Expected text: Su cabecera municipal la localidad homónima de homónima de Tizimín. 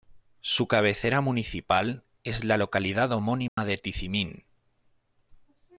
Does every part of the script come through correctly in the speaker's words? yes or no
no